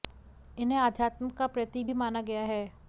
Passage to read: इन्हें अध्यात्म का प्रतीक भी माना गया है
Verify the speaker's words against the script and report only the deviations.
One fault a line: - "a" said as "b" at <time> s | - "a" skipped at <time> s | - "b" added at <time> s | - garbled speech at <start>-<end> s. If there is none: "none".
none